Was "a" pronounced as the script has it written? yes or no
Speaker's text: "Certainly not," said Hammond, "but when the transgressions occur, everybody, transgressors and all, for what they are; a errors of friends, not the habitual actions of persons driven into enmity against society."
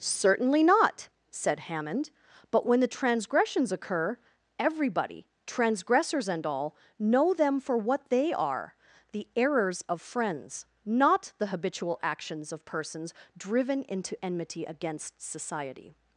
no